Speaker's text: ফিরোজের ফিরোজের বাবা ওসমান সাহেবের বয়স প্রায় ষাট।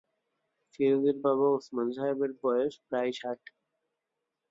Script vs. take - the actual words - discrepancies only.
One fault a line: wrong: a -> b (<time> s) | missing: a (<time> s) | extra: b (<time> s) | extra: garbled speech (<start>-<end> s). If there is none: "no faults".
missing: ফিরোজের (1.2 s)